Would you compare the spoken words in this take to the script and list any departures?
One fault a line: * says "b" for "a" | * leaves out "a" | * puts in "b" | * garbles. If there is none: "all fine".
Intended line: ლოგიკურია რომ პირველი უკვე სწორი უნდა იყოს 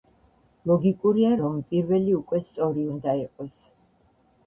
all fine